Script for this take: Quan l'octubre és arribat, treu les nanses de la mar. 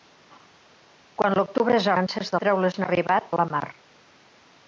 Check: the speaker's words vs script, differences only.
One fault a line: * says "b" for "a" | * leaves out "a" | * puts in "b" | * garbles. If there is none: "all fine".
* says "nanses" for "arribat"
* says "arribat" for "nanses"